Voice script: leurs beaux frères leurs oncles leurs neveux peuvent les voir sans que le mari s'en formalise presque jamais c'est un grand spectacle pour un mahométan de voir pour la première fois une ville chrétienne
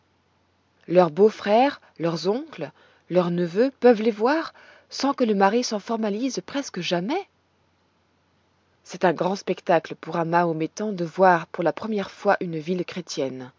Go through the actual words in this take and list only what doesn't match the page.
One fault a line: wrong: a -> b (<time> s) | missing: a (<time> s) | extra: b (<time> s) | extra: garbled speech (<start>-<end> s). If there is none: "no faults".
no faults